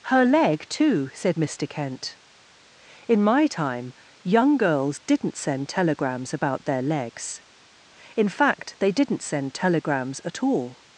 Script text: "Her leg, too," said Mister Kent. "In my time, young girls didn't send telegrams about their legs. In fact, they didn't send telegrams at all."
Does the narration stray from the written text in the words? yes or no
no